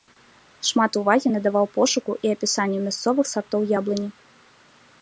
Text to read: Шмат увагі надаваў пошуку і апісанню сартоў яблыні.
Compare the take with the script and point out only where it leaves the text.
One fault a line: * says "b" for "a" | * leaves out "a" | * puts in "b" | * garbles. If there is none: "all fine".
* puts in "мясцовых"